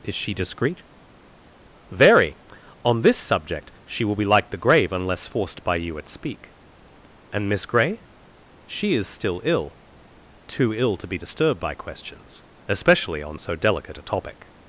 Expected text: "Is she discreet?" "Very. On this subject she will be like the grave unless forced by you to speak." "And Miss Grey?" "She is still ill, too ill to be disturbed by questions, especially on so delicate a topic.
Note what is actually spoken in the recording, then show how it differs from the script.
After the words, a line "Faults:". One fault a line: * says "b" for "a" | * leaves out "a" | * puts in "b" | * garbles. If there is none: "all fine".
"Is she discreet?" "Very. On this subject she will be like the grave unless forced by you at speak." "And Miss Grey?" "She is still ill, too ill to be disturbed by questions, especially on so delicate a topic.
Faults:
* says "at" for "to"